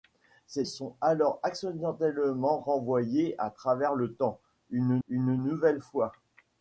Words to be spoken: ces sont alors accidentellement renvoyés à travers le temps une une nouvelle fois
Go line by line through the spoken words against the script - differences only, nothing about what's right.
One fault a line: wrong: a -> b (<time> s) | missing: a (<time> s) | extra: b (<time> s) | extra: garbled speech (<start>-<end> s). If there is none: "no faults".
no faults